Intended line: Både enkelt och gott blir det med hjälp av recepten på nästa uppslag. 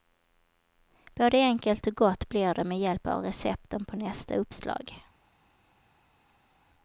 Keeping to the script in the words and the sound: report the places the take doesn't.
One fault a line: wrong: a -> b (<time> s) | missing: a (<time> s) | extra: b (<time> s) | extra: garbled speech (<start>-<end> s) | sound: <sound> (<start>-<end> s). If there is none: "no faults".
no faults